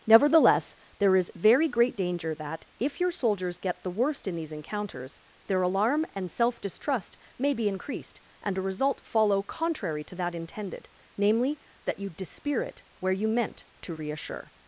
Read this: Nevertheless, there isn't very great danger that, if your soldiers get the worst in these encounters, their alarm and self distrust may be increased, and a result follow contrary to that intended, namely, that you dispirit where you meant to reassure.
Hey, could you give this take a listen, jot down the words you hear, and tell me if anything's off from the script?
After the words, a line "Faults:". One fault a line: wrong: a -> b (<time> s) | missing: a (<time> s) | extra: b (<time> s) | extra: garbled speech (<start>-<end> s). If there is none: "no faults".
Nevertheless, there is very great danger that, if your soldiers get the worst in these encounters, their alarm and self distrust may be increased, and a result follow contrary to that intended, namely, that you dispirit where you meant to reassure.
Faults:
wrong: isn't -> is (1.1 s)